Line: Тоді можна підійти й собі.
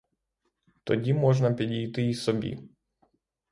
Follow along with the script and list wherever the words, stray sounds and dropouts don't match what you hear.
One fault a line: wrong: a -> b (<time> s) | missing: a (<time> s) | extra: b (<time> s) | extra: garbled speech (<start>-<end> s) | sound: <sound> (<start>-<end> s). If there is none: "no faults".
no faults